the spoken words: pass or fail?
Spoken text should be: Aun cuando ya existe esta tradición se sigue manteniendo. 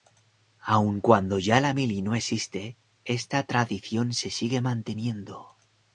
fail